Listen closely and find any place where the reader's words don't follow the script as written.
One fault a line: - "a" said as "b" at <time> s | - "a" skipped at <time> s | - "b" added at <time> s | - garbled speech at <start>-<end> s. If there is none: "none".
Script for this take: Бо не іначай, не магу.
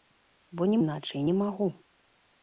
none